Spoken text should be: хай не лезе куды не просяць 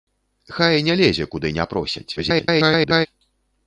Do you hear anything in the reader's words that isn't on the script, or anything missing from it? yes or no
yes